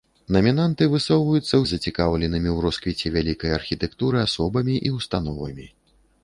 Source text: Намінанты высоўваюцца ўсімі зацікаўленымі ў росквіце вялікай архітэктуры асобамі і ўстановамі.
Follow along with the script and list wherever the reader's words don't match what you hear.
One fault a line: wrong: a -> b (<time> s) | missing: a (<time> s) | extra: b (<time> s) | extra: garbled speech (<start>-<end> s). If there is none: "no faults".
missing: ўсімі (1.6 s)